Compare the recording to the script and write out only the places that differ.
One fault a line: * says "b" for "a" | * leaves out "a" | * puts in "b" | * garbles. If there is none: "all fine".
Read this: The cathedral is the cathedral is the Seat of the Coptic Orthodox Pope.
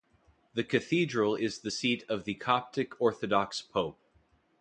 * leaves out "cathedral is the"